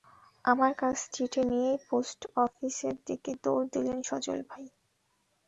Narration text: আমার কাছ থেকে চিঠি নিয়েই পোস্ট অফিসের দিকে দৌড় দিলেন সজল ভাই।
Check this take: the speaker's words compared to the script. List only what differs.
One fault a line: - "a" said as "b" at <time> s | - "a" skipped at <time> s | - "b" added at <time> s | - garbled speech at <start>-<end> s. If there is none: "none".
- "থেকে" skipped at 1.0 s